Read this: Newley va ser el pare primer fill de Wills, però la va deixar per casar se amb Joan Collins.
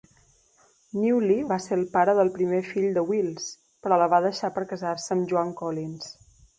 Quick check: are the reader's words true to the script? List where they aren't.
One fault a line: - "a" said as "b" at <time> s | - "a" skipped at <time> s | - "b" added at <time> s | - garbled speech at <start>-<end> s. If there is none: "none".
- "del" added at 2.2 s